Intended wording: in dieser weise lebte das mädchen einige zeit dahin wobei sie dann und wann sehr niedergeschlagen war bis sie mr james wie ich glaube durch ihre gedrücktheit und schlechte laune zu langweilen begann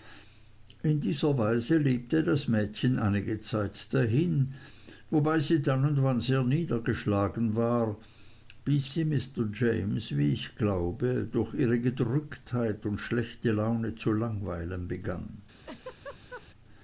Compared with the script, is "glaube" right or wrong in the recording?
right